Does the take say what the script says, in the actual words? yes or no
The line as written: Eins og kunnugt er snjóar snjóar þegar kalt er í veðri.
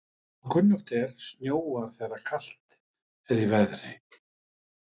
no